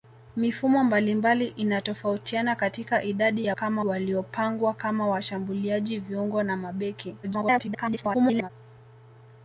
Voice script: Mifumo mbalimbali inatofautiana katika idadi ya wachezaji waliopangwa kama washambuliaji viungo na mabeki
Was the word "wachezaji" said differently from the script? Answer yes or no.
yes